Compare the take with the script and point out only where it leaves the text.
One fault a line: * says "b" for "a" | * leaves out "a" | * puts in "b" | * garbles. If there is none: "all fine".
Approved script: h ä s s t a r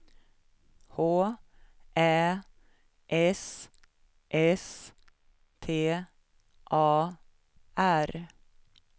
all fine